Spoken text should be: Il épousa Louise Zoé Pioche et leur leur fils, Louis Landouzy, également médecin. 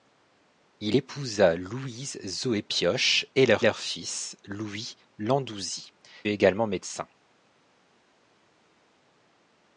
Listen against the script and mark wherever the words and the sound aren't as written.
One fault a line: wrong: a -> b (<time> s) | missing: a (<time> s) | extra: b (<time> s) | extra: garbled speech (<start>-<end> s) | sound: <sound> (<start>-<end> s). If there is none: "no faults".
no faults